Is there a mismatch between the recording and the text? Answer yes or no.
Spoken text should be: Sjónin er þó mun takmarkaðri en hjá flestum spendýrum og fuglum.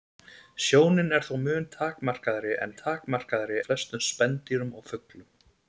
yes